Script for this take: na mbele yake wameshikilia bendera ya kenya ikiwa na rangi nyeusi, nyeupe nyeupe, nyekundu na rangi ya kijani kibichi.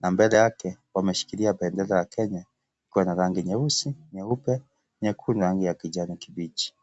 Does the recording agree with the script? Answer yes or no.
no